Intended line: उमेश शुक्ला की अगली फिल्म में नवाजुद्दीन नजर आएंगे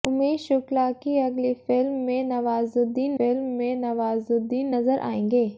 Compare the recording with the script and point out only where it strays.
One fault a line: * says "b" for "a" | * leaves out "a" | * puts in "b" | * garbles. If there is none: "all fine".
* puts in "फिल्म में नवाजुद्दीन"